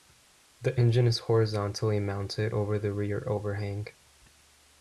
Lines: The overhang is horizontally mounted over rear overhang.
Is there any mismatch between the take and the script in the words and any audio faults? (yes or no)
yes